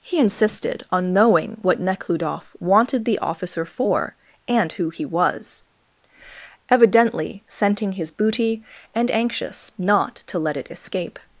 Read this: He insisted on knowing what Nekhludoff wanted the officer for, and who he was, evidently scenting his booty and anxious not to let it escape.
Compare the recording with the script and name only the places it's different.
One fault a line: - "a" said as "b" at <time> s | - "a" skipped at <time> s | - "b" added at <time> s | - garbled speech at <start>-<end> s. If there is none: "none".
none